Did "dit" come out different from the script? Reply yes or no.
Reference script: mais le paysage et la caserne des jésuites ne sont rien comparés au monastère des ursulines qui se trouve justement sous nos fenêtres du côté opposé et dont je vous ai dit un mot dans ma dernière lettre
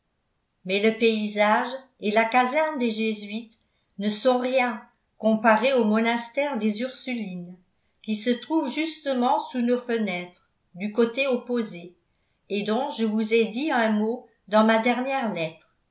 no